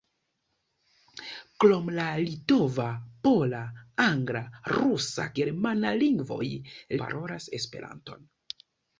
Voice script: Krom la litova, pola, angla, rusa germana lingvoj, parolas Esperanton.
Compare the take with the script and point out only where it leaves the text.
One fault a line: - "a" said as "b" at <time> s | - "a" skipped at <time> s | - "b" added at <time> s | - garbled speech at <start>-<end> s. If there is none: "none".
none